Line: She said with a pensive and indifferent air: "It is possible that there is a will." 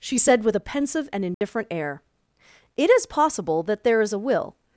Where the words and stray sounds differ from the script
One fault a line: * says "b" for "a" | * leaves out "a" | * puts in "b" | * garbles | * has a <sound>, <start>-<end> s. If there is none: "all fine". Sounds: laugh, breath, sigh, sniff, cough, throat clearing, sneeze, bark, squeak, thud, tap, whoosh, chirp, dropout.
* has a dropout, 1.3-1.4 s